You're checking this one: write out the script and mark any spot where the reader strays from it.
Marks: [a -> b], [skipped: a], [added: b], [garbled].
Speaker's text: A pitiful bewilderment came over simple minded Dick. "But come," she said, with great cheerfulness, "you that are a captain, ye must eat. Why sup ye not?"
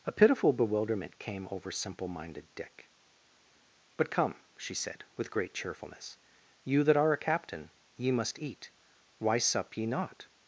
A pitiful bewilderment came over simple minded Dick. "But come," she said, with great cheerfulness, "you that are a captain, ye must eat. Why sup ye not?"